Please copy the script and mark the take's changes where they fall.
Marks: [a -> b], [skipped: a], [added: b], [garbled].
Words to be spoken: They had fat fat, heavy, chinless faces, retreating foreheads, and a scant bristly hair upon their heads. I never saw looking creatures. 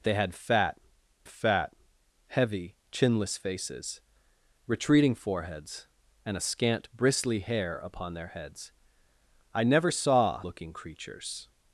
They had fat fat, heavy, chinless faces, retreating foreheads, and a scant bristly hair upon their heads. I never saw looking creatures.